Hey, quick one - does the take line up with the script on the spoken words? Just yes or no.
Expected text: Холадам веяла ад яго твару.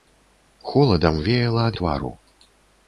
no